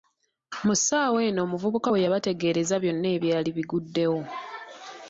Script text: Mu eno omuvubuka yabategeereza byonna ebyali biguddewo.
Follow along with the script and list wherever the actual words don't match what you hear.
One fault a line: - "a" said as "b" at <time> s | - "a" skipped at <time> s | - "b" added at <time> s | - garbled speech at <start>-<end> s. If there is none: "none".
- "ssaawa" added at 0.8 s
- "we" added at 1.9 s